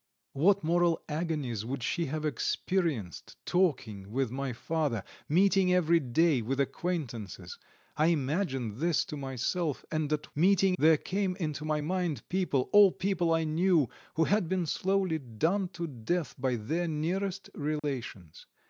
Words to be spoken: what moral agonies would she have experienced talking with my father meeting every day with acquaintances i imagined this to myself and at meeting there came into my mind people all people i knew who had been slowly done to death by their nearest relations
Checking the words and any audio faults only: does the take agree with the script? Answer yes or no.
no